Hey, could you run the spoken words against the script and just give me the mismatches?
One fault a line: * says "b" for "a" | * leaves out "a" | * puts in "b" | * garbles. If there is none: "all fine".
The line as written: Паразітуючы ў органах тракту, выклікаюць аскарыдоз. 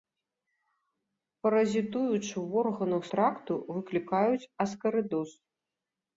all fine